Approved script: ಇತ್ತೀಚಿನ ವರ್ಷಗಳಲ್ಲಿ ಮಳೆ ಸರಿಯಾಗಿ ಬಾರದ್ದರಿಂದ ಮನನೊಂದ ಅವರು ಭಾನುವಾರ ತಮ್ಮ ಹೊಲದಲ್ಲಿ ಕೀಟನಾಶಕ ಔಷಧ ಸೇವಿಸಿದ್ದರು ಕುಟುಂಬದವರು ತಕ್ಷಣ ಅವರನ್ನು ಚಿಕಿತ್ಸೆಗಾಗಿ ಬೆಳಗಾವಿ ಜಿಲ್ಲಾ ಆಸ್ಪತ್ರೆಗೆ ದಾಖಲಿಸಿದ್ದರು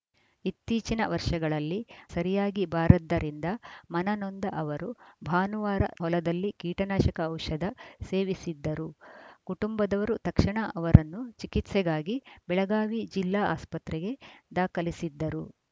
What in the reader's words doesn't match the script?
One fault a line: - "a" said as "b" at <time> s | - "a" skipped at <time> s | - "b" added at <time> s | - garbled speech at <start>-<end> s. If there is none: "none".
- "ಮಳೆ" skipped at 1.8 s
- "ತಮ್ಮ" skipped at 5.8 s